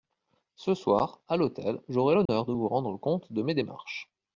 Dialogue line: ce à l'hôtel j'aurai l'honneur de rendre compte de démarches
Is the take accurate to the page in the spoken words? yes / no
no